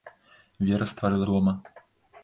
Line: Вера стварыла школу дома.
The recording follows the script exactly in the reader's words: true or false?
false